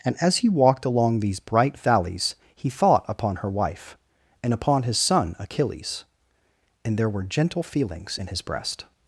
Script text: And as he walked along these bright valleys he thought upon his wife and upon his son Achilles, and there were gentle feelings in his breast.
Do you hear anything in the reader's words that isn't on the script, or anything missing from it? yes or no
yes